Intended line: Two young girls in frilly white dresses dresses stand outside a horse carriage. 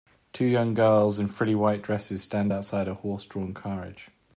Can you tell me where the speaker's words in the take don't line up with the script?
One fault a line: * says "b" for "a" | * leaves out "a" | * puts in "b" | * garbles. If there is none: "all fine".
* leaves out "dresses"
* puts in "drawn"